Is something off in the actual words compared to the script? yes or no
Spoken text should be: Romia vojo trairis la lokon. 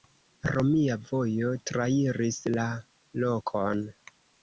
no